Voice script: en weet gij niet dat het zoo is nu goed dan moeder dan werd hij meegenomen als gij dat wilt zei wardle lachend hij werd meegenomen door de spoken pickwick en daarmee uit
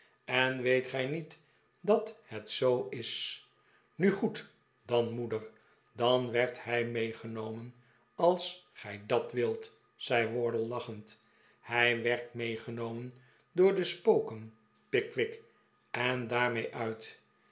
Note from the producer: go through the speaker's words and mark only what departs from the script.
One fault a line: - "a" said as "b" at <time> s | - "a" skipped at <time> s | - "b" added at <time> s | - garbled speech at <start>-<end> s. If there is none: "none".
none